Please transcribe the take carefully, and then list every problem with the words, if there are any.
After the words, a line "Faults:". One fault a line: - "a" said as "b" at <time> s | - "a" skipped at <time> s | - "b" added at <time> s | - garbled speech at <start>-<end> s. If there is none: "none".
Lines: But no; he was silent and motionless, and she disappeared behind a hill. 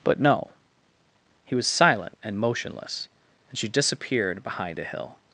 But no; he was silent and motionless, and she disappeared behind a hill.
Faults:
none